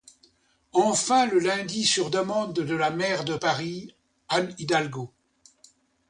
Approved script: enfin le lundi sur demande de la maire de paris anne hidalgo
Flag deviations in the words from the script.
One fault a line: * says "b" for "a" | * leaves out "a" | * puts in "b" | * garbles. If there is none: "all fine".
all fine